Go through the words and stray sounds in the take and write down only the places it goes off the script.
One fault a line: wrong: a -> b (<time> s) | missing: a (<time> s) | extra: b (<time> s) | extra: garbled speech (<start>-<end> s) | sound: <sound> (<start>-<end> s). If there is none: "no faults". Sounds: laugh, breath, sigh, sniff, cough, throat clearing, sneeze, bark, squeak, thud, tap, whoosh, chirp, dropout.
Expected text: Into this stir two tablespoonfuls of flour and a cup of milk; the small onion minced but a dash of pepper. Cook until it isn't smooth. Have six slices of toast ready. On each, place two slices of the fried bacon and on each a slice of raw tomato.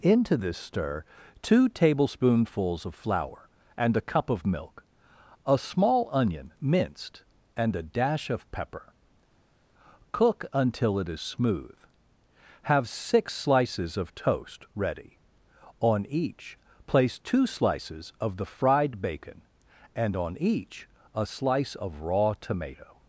wrong: the -> a (5.5 s)
wrong: but -> and (7.5 s)
wrong: isn't -> is (11.1 s)